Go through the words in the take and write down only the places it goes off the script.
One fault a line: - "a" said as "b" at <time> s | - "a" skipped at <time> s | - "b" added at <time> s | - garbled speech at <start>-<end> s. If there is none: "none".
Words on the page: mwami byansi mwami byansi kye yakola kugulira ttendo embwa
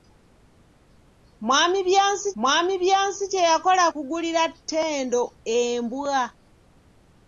none